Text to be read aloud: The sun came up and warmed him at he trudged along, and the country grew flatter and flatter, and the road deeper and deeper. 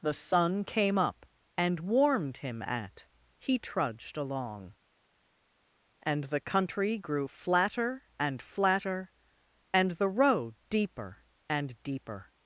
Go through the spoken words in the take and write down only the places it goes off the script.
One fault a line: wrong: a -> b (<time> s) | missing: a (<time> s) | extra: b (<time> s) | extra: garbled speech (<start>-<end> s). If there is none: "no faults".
no faults